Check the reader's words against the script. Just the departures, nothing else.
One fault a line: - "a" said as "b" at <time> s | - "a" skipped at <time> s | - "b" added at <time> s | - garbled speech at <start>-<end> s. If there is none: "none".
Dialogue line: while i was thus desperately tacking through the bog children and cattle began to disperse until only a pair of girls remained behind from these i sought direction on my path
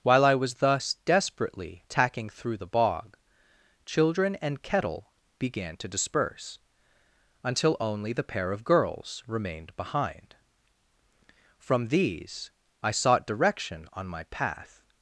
- "cattle" said as "kettle" at 4.6 s
- "a" said as "the" at 8.1 s